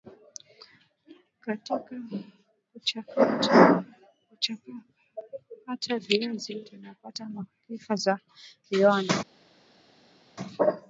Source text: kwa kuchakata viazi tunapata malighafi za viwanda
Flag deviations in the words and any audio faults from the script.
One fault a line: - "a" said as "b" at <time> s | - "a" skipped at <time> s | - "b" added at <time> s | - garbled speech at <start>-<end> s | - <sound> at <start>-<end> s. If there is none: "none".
- "kwa" said as "katika" at 1.4 s